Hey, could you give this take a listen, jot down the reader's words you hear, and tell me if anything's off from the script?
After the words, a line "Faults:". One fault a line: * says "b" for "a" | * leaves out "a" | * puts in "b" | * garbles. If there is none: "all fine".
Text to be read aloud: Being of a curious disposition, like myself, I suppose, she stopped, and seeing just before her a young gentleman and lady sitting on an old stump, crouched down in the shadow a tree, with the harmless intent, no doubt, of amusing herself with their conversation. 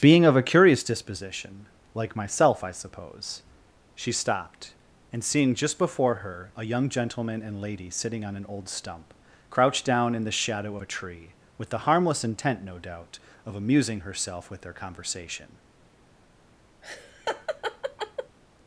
Being of a curious disposition, like myself, I suppose, she stopped, and seeing just before her a young gentleman and lady sitting on an old stump, crouched down in the shadow a tree, with the harmless intent, no doubt, of amusing herself with their conversation.
Faults:
all fine